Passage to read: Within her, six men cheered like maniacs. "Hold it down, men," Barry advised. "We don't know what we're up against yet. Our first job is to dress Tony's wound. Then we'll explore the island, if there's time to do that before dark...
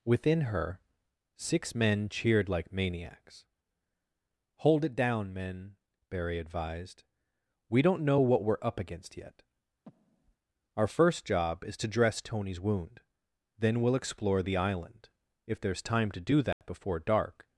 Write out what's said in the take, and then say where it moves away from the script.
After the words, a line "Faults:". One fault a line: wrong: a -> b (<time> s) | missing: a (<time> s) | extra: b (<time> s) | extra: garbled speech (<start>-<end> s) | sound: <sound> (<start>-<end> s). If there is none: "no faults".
Within her, six men cheered like maniacs. "Hold it down, men," Barry advised. "We don't know what we're up against yet. Our first job is to dress Tony's wound. Then we'll explore the island, if there's time to do that before dark...
Faults:
sound: breath (9.9-10.4 s)
sound: dropout (16.5-16.6 s)